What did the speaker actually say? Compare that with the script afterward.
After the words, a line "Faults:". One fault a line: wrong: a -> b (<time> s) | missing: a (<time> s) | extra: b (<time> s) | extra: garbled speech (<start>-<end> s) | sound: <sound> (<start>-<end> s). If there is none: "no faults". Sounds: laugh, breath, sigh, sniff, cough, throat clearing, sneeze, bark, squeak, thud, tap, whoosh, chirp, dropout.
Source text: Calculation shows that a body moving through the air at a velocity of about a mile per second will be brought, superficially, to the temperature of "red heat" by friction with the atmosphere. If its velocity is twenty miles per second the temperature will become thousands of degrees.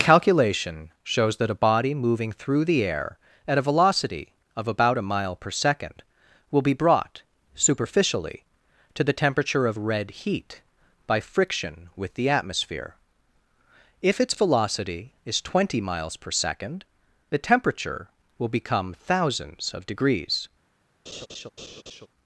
Calculation shows that a body moving through the air at a velocity of about a mile per second will be brought, superficially, to the temperature of "red heat" by friction with the atmosphere. If its velocity is twenty miles per second the temperature will become thousands of degrees.
Faults:
sound: laugh (21.1-22.1 s)